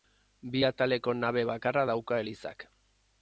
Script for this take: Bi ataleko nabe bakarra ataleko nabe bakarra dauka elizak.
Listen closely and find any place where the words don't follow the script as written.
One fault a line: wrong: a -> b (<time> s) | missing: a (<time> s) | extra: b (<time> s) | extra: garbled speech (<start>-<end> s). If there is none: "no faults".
missing: ataleko nabe bakarra (1.8 s)